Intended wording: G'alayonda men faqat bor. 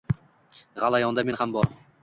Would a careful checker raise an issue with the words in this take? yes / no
yes